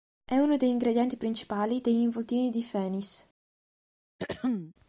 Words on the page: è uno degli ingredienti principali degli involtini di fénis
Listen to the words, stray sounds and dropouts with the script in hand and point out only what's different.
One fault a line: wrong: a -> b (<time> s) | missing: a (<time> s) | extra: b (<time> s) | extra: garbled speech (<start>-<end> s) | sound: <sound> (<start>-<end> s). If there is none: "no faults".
sound: throat clearing (4.2-4.7 s)